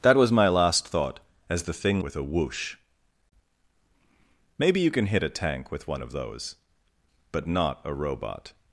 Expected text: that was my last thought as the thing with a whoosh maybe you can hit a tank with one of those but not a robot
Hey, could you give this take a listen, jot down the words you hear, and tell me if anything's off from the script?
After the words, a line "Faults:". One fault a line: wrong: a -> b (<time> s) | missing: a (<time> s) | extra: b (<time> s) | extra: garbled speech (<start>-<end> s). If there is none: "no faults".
that was my last thought as the thing with a whoosh maybe you can hit a tank with one of those but not a robot
Faults:
no faults